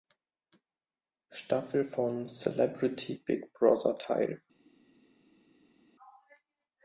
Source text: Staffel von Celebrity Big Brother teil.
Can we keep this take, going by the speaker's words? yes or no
yes